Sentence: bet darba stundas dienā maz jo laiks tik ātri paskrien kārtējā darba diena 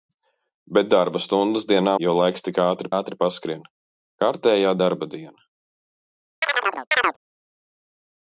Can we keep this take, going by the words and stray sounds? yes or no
no